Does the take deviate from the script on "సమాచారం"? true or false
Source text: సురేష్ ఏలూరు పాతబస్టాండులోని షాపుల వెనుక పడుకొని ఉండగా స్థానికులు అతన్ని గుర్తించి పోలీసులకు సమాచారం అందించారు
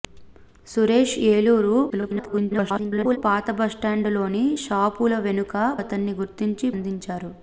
true